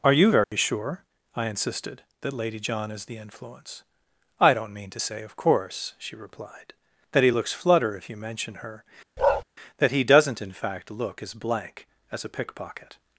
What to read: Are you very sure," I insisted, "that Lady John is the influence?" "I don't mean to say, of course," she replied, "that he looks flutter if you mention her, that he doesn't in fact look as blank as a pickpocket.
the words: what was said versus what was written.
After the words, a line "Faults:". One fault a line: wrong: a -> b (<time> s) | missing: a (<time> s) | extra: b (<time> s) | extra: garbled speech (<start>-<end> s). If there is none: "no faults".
Are you very sure," I insisted, "that Lady John is the influence?" "I don't mean to say, of course," she replied, "that he looks flutter if you mention her, that he doesn't in fact look as blank as a pickpocket.
Faults:
no faults